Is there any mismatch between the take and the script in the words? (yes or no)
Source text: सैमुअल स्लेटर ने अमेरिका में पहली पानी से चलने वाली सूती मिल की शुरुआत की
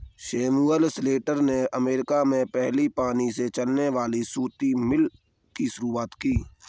no